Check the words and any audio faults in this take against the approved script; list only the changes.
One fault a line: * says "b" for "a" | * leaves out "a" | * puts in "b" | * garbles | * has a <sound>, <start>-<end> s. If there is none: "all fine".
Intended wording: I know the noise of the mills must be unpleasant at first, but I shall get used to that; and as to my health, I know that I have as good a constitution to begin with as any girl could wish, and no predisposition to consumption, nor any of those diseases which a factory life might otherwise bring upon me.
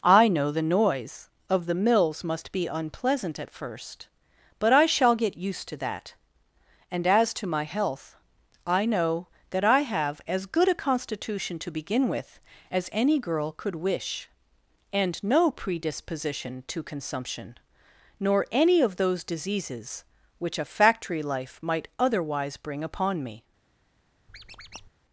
* has a squeak, 24.3-24.9 s